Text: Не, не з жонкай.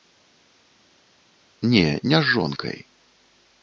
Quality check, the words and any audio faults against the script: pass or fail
pass